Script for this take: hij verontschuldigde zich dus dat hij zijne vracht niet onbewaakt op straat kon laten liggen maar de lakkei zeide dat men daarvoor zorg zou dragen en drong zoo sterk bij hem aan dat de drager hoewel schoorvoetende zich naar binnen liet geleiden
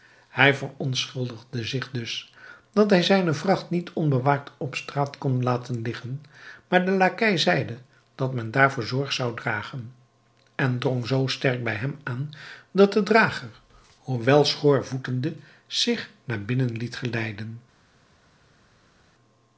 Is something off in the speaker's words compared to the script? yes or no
no